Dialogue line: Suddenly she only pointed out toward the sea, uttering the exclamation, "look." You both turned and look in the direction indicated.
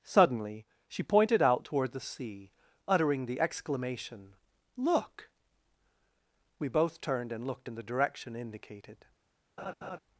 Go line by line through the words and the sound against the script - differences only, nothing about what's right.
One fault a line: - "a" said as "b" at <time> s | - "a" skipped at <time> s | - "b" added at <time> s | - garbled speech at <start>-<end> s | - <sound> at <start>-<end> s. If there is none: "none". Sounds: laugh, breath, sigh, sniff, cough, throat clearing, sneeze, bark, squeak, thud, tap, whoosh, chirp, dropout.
- "only" skipped at 1.0 s
- "You" said as "We" at 6.6 s
- "look" said as "looked" at 7.5 s
- laugh at 9.6-10.0 s